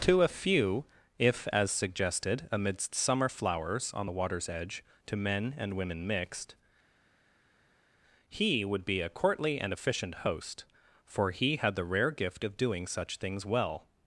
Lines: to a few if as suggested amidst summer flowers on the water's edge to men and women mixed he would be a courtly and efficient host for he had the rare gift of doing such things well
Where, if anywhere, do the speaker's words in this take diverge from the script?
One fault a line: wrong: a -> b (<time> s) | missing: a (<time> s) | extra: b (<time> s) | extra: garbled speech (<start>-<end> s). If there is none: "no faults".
no faults